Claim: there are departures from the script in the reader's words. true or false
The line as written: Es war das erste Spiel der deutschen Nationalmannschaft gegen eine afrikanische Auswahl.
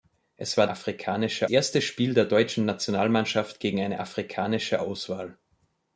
true